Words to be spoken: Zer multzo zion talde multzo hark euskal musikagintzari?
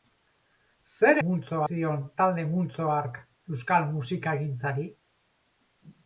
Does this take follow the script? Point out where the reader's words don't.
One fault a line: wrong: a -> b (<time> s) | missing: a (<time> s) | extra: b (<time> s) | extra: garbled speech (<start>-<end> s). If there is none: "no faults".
no faults